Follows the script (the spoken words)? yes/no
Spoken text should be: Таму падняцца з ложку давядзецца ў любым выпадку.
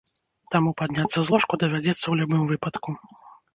yes